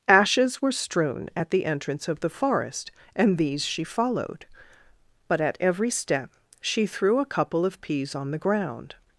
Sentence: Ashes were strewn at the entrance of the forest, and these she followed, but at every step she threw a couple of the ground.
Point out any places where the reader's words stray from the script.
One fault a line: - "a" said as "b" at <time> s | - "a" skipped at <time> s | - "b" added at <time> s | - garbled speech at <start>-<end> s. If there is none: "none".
- "peas on" added at 7.8 s